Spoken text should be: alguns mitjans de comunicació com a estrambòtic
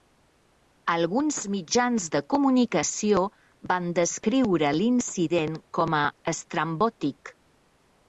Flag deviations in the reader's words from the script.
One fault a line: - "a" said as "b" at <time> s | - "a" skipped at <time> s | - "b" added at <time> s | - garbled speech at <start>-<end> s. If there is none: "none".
- "van descriure l'incident" added at 3.7 s